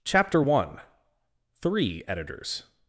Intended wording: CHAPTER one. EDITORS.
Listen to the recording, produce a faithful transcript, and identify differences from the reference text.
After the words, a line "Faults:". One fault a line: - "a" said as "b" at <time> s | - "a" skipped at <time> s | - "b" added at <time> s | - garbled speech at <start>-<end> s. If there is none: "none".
CHAPTER one. THREE EDITORS.
Faults:
- "THREE" added at 1.5 s